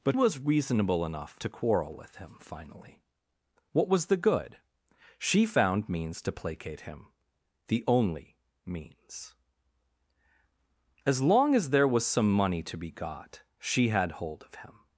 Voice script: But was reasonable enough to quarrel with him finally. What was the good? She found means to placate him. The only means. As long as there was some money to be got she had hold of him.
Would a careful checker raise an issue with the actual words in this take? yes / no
no